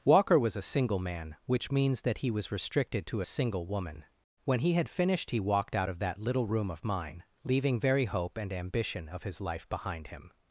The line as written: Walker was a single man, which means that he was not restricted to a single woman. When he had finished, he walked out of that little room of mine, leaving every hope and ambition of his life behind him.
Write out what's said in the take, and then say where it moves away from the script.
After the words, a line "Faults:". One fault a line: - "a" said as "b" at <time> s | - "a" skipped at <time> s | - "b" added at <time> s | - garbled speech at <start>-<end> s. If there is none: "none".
Walker was a single man, which means that he was restricted to a single woman. When he had finished, he walked out of that little room of mine, leaving very hope and ambition of his life behind him.
Faults:
- "not" skipped at 2.5 s
- "every" said as "very" at 7.8 s